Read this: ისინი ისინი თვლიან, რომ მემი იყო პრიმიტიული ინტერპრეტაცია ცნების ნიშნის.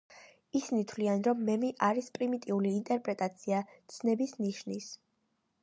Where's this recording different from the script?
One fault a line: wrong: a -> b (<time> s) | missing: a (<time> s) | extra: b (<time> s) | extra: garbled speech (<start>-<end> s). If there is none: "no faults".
missing: ისინი (0.8 s)
wrong: იყო -> არის (1.9 s)